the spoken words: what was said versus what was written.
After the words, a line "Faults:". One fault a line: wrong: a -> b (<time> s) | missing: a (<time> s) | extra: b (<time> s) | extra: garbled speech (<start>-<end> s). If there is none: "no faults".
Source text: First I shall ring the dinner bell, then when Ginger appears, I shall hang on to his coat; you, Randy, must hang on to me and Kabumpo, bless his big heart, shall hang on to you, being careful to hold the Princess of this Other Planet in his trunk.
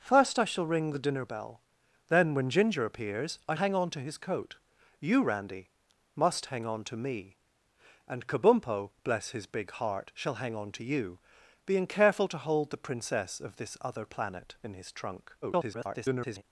First I shall ring the dinner bell, then when Ginger appears, I hang on to his coat; you, Randy, must hang on to me and Kabumpo, bless his big heart, shall hang on to you, being careful to hold the Princess of this Other Planet in his trunk. [garbled]
Faults:
missing: shall (3.5 s)
extra: garbled speech (15.4-16.4 s)